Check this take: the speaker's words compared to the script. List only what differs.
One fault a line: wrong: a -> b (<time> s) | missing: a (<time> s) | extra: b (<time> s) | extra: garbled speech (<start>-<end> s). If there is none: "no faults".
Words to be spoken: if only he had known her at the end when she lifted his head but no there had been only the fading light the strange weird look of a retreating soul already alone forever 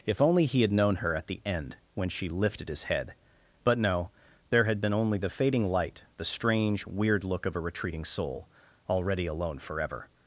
no faults